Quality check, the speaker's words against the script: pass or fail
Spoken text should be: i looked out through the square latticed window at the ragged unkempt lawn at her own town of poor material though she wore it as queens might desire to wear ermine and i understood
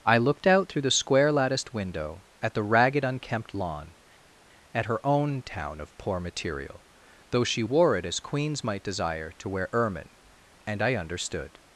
pass